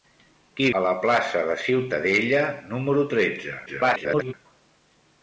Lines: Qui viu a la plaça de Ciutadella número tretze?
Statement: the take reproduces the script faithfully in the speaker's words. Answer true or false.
false